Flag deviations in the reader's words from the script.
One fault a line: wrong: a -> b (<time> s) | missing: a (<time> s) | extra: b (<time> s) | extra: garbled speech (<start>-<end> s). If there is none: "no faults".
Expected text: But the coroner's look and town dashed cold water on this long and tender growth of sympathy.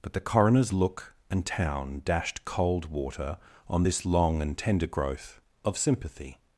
no faults